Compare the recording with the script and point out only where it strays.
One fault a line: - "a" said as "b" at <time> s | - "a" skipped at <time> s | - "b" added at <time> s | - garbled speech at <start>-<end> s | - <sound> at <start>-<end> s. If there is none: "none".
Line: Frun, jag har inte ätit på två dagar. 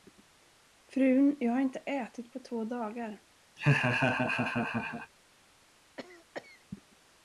- laugh at 3.6-5.1 s
- cough at 6.0-6.6 s